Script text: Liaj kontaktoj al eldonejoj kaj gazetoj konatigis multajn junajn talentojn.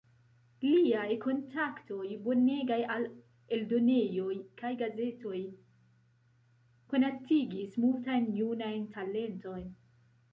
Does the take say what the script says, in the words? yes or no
no